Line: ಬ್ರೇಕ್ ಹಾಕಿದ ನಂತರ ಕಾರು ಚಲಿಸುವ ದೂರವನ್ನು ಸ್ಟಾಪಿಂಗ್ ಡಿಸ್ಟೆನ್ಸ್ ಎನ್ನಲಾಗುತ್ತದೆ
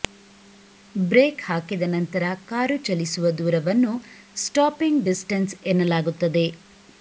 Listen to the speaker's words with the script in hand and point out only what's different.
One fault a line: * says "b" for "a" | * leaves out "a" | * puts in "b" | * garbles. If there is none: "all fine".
all fine